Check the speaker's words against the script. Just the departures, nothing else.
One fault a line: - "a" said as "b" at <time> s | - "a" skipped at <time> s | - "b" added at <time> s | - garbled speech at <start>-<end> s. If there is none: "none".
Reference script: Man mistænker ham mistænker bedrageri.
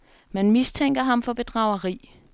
- "mistænker" said as "for" at 1.2 s